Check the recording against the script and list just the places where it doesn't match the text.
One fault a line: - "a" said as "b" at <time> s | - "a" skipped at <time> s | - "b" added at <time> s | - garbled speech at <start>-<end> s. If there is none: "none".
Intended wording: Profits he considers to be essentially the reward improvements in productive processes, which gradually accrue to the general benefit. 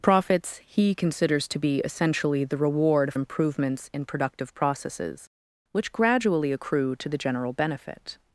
none